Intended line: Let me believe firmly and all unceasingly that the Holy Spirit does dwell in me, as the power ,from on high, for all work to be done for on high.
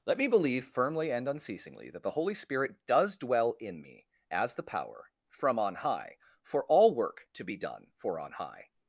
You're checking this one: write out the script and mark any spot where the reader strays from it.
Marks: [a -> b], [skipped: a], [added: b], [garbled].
Let me believe firmly and [skipped: all] unceasingly that the Holy Spirit does dwell in me, as the power ,from on high, for all work to be done for on high.